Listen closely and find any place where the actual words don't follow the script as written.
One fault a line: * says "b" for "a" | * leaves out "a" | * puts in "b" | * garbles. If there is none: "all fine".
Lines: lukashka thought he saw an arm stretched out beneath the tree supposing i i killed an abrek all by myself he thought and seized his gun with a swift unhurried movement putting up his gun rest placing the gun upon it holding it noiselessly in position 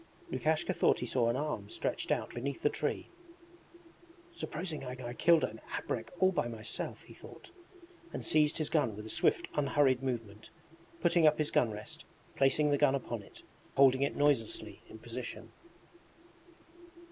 all fine